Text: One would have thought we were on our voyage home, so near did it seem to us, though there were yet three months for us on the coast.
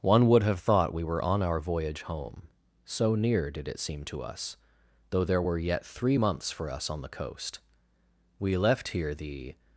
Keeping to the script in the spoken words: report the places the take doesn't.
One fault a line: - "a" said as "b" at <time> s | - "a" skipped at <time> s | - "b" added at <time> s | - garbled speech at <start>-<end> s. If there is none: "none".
- "We left here the" added at 8.4 s